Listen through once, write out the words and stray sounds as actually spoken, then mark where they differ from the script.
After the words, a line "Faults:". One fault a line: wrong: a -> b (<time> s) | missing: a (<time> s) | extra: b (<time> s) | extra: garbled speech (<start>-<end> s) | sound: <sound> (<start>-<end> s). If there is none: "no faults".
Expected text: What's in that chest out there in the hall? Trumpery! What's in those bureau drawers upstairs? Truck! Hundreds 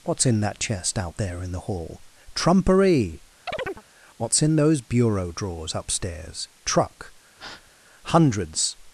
What's in that chest out there in the hall? Trumpery! What's in those bureau drawers upstairs? Truck! Hundreds
Faults:
sound: chirp (3.5-3.8 s)
sound: breath (7.4-7.7 s)